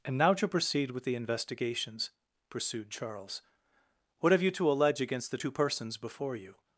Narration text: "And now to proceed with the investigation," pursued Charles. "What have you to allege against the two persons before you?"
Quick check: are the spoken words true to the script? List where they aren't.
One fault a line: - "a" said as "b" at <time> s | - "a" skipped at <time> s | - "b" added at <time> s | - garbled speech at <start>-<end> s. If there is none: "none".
- "investigation" said as "investigations" at 1.1 s